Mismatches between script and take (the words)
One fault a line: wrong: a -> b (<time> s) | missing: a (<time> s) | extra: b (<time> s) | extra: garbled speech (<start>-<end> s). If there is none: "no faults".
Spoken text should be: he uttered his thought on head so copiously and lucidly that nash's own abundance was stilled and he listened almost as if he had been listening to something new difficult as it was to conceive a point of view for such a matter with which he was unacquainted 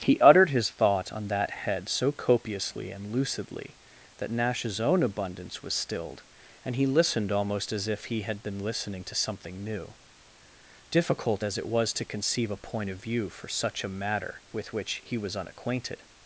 extra: that (1.3 s)